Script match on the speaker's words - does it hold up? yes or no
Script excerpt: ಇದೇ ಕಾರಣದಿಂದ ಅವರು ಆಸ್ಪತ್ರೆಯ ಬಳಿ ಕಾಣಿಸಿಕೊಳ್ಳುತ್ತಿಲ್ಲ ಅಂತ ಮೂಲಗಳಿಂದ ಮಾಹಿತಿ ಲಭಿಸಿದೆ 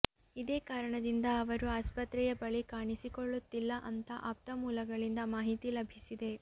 no